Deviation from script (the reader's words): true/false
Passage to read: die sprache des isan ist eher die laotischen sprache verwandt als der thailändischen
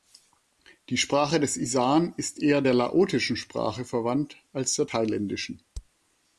true